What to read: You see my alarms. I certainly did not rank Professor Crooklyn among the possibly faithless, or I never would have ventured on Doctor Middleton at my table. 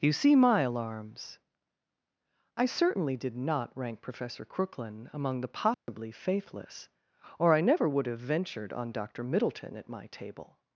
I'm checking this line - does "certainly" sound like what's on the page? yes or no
yes